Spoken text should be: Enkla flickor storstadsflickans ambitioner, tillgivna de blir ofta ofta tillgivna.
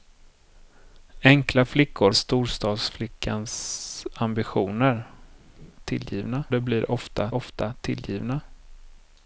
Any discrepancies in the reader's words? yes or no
no